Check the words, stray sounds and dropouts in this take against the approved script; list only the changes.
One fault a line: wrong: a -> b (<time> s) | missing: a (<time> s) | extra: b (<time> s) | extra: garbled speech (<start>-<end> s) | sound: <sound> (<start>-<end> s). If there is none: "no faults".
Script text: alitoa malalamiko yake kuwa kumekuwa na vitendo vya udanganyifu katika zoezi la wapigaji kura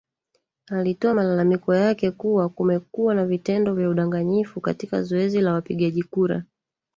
no faults